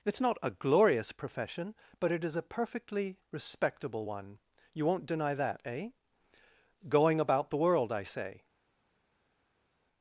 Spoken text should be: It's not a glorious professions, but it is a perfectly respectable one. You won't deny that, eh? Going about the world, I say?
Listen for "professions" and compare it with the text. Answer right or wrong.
wrong